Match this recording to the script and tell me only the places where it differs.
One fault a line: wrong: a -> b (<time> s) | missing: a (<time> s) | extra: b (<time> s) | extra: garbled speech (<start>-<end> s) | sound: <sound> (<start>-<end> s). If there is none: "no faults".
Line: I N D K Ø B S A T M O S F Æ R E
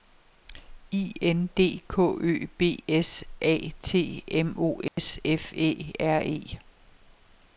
sound: dropout (4.9-5.0 s)